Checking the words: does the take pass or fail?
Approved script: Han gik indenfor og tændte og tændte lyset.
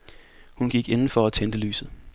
fail